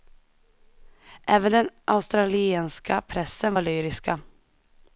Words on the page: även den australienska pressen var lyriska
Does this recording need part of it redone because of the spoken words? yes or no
no